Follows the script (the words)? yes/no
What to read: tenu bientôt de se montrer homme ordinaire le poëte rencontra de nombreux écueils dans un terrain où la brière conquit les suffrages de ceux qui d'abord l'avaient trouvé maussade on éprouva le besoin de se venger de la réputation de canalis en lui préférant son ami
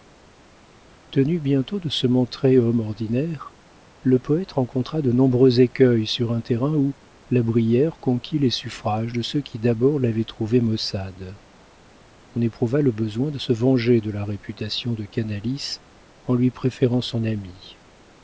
no